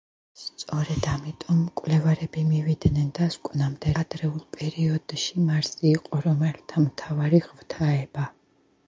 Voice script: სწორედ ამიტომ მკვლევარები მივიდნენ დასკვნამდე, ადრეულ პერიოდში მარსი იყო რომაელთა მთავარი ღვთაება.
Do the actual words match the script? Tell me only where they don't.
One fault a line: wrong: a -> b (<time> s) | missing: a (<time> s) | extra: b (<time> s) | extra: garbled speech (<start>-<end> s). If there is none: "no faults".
no faults